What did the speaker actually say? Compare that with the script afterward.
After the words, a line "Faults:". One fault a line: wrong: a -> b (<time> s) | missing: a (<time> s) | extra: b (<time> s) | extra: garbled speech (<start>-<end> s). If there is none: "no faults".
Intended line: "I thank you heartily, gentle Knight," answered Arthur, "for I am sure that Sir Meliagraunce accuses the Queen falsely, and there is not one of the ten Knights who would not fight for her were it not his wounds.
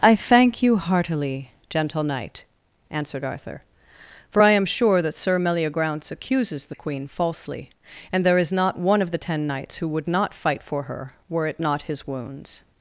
"I thank you heartily, gentle Knight," answered Arthur, "for I am sure that Sir Meliagraunce accuses the Queen falsely, and there is not one of the ten Knights who would not fight for her were it not his wounds.
Faults:
no faults